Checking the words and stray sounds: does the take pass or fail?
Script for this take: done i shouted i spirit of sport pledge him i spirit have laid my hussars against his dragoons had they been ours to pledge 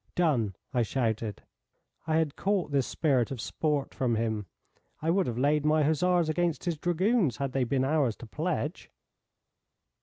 fail